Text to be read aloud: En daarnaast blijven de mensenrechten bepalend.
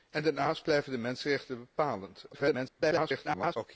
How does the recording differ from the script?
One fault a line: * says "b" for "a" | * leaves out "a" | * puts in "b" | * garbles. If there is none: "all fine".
* garbles